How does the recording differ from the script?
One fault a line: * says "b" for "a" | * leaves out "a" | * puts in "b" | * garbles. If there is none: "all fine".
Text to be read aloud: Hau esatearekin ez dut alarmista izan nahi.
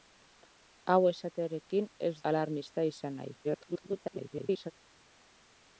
* leaves out "dut"
* garbles